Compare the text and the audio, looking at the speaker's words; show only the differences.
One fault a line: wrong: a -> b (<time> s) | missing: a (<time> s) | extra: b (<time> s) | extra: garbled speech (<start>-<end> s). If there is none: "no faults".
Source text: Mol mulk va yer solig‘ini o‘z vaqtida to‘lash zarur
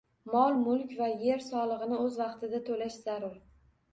no faults